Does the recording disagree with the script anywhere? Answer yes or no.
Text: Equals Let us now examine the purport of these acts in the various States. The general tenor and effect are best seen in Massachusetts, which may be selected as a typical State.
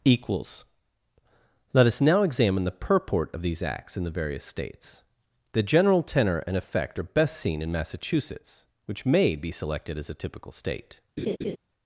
no